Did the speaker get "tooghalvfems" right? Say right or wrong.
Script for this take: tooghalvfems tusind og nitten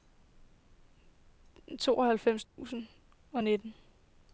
right